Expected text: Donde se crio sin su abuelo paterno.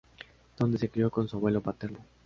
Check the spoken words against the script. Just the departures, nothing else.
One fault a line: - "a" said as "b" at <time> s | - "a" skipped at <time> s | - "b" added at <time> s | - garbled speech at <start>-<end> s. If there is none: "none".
- "sin" said as "con" at 1.1 s